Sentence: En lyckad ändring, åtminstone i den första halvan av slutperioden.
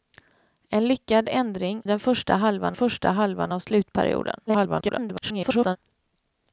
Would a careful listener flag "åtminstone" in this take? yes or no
yes